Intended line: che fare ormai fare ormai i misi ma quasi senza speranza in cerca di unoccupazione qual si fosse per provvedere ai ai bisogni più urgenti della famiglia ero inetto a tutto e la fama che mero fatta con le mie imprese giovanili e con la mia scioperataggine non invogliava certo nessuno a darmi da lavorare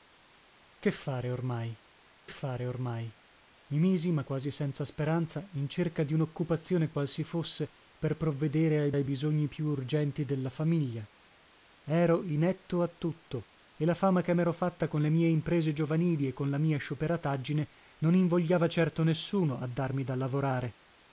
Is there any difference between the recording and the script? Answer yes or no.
no